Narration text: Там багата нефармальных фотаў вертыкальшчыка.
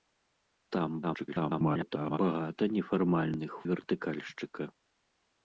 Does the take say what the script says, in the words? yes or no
no